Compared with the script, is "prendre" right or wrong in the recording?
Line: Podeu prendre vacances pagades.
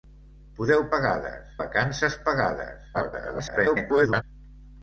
wrong